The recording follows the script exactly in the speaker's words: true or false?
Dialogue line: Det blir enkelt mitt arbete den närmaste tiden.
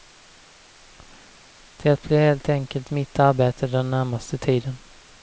false